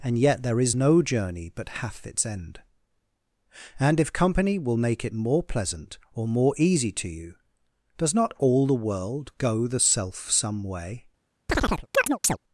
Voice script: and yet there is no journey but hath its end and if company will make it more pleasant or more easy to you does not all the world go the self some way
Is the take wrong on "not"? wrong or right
right